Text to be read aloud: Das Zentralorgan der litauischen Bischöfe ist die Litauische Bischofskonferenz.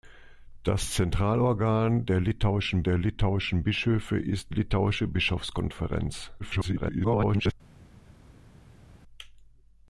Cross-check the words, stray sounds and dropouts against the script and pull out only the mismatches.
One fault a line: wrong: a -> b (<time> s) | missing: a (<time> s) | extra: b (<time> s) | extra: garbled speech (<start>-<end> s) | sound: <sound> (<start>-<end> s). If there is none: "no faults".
extra: der litauischen (2.8 s)
missing: die (4.5 s)
extra: garbled speech (6.4-7.5 s)